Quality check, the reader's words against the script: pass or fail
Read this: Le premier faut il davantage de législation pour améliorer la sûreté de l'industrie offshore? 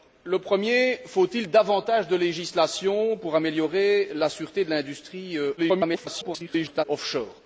fail